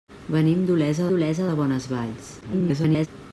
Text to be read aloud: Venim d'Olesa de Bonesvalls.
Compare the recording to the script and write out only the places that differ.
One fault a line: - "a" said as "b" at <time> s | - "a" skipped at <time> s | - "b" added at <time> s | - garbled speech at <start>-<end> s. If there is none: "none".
- "d'Olesa" added at 1.1 s
- garbled speech at 2.4-3.1 s